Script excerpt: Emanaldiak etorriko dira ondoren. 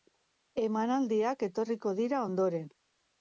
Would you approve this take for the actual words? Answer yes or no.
yes